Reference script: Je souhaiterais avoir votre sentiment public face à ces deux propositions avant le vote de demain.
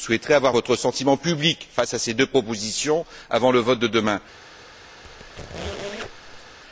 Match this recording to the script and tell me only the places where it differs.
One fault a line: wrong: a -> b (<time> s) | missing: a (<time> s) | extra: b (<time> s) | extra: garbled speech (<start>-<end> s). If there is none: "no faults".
no faults